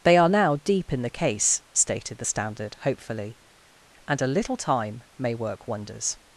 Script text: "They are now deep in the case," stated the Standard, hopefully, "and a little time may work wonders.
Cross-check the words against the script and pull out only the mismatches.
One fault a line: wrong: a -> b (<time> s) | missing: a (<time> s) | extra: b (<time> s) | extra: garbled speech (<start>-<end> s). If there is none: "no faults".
no faults